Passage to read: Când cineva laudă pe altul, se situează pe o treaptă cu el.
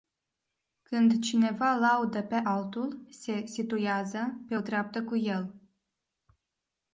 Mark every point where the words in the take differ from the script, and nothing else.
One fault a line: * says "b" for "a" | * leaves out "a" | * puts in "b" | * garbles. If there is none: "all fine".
all fine